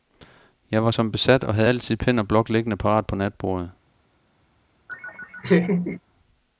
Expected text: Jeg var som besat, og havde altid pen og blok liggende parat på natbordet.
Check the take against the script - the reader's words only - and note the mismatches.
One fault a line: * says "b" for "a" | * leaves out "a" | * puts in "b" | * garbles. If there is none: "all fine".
all fine